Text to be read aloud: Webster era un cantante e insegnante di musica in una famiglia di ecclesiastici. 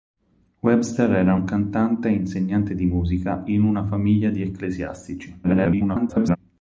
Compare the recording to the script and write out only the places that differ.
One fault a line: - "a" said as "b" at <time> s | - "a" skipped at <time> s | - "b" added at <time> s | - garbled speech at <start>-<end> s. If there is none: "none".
- garbled speech at 5.4-6.4 s